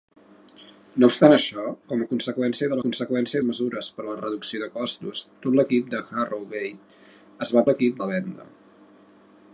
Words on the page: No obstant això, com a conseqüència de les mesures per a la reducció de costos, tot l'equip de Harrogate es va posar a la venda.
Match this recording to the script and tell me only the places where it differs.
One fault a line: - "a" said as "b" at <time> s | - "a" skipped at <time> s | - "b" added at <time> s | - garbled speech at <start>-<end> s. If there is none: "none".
- "les" said as "conseqüència" at 2.9 s
- "posar" said as "l'equip" at 7.7 s